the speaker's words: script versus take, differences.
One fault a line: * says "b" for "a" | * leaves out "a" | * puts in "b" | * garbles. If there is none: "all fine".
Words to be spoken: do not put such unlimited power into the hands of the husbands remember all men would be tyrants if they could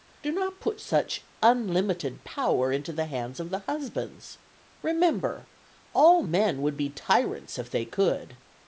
all fine